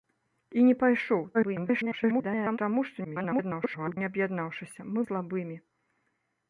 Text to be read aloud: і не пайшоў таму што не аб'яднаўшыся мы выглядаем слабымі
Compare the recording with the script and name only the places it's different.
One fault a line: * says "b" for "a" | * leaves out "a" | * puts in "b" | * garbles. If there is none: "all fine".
* garbles
* garbles
* leaves out "выглядаем"